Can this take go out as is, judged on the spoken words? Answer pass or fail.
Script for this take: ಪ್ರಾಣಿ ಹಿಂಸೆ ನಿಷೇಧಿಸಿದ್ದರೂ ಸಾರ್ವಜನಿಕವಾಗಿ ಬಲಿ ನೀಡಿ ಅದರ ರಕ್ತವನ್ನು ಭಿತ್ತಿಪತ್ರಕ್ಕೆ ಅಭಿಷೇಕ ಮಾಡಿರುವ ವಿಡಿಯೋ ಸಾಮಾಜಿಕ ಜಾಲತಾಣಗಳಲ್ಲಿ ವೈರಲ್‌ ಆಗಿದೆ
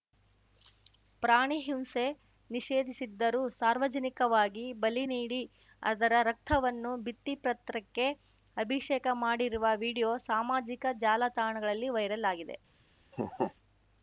pass